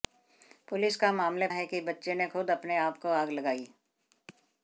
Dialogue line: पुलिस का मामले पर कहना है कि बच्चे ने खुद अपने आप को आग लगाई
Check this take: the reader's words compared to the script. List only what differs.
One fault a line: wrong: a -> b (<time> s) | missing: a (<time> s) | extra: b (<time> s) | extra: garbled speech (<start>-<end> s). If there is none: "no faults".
missing: पर कहना (1.5 s)